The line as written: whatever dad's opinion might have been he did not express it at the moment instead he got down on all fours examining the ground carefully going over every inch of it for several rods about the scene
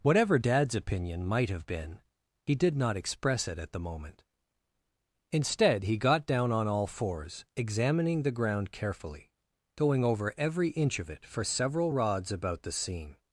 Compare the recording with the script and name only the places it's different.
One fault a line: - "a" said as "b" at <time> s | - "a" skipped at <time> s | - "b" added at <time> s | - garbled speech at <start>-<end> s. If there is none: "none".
none